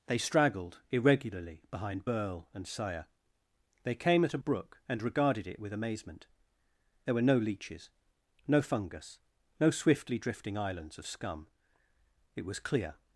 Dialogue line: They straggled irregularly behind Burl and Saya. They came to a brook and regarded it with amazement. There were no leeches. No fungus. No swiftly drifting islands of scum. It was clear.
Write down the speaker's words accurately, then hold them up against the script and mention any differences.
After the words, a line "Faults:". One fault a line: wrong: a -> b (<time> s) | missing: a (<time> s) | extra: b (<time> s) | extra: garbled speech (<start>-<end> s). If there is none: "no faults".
They straggled irregularly behind Burl and Saya. They came at a brook and regarded it with amazement. There were no leeches. No fungus. No swiftly drifting islands of scum. It was clear.
Faults:
wrong: to -> at (4.2 s)